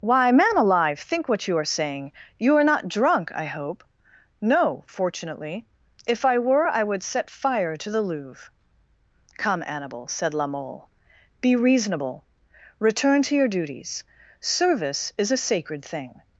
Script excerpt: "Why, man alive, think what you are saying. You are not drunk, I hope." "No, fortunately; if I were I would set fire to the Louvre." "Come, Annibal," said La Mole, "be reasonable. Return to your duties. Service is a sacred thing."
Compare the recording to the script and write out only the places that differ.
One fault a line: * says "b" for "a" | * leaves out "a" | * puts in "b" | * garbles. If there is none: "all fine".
all fine